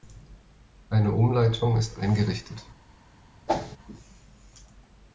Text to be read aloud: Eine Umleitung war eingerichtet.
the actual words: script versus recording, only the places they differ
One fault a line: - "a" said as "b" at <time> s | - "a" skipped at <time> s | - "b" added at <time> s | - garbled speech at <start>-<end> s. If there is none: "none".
- "war" said as "ist" at 1.8 s